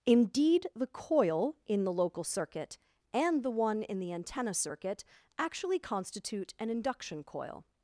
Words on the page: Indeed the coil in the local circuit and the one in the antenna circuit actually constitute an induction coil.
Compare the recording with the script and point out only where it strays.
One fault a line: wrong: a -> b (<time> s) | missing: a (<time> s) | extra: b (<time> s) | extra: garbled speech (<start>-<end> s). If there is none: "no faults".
no faults